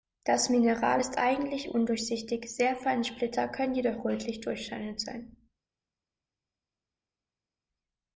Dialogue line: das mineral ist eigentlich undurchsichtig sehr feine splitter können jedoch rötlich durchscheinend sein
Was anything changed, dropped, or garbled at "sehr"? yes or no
no